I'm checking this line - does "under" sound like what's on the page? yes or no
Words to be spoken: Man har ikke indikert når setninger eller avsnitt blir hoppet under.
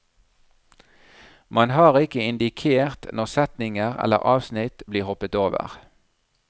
no